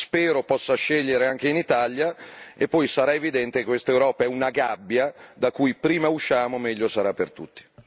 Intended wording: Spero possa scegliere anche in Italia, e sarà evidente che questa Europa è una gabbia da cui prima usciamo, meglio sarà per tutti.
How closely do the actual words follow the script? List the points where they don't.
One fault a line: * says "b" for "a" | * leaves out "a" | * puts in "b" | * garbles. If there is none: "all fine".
* puts in "poi"